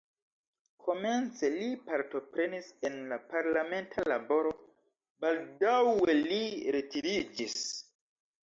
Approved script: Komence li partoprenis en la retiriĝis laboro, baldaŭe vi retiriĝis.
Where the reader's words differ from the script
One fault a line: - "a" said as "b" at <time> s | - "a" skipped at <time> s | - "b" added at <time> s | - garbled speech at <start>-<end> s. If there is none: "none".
- "retiriĝis" said as "parlamenta" at 3.4 s
- "vi" said as "li" at 6.2 s